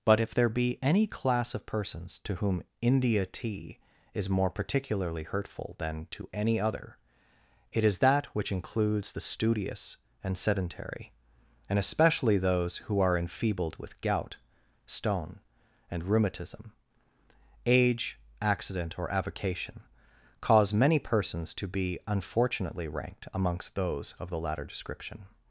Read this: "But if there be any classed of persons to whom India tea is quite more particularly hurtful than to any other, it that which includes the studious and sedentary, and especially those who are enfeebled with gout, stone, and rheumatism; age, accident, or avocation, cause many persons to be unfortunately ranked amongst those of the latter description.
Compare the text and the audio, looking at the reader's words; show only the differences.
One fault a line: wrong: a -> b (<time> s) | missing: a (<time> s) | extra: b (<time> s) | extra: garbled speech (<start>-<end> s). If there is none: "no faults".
wrong: classed -> class (1.1 s)
missing: quite (4.3 s)
extra: is (7.8 s)